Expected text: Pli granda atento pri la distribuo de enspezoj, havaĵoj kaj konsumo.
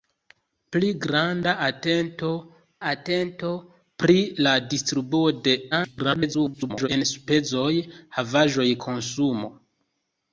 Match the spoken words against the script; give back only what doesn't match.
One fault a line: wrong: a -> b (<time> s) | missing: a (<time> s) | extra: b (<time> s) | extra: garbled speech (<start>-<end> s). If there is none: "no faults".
extra: atento (2.9 s)
extra: garbled speech (5.7-6.9 s)
missing: kaj (8.7 s)